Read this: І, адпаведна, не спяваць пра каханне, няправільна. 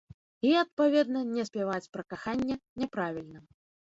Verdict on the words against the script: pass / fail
pass